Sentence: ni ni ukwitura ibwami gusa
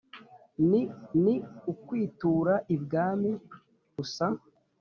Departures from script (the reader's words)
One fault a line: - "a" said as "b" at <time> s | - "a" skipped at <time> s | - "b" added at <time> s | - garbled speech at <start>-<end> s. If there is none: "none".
none